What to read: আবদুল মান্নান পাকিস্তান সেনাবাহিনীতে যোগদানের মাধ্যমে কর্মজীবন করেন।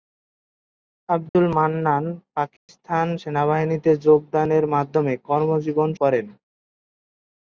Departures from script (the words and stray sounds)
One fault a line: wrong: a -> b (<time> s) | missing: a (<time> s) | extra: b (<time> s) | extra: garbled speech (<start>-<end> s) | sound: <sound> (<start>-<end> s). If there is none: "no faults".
sound: dropout (1.3-1.4 s)
sound: dropout (2.6-2.7 s)